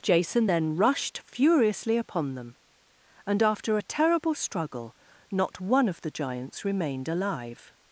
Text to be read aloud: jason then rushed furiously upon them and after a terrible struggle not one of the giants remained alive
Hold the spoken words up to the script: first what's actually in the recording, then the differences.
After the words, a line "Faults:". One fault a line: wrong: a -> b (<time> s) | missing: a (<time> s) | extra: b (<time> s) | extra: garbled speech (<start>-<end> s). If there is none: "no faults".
jason then rushed furiously upon them and after a terrible struggle not one of the giants remained alive
Faults:
no faults